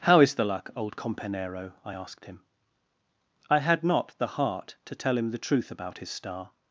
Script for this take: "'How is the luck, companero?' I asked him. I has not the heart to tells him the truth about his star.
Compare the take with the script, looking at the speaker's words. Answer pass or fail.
fail